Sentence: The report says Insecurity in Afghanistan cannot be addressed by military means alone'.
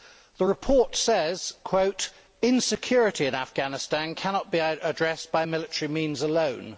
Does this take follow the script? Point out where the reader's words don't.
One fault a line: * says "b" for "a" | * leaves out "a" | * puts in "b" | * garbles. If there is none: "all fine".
all fine